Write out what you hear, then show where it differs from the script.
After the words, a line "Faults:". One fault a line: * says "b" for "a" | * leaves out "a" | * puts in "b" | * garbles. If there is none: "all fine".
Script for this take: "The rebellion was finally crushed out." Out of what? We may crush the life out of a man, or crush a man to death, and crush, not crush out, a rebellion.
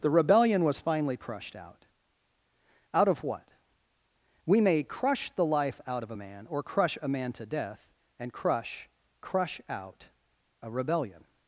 "The rebellion was finally crushed out." Out of what? We may crush the life out of a man, or crush a man to death, and crush, crush out, a rebellion.
Faults:
* leaves out "not"